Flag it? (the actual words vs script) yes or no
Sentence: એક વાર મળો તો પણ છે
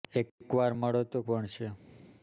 no